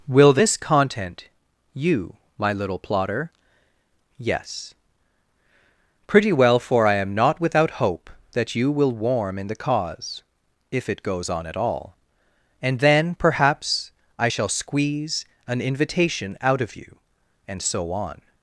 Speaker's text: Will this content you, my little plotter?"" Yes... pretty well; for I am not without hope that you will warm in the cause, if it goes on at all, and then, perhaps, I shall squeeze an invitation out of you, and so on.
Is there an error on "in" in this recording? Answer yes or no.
no